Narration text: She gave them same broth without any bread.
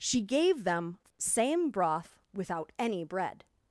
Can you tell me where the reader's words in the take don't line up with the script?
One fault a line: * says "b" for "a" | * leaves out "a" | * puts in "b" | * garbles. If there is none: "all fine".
all fine